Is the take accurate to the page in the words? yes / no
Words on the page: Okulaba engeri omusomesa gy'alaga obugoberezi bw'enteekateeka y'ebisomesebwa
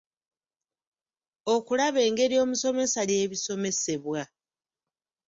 no